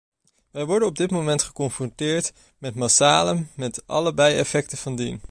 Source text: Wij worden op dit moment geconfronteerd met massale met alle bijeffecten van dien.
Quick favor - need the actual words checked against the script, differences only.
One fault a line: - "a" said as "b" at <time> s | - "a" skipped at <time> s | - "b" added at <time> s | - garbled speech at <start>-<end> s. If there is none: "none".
none